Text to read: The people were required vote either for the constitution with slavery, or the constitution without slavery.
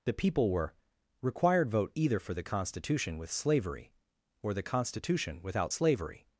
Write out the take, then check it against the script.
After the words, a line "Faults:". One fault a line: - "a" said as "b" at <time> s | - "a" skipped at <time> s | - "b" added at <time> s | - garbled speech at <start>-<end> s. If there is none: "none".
The people were required vote either for the constitution with slavery, or the constitution without slavery.
Faults:
none